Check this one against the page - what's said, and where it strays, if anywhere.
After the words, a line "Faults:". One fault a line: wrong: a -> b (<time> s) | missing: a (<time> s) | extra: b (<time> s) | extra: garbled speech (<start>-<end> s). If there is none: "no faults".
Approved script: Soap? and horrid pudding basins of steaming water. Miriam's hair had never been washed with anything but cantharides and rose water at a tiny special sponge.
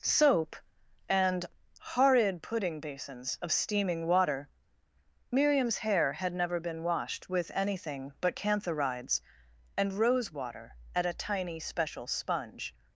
Soap? and horrid pudding basins of steaming water. Miriam's hair had never been washed with anything but cantharides and rose water at a tiny special sponge.
Faults:
no faults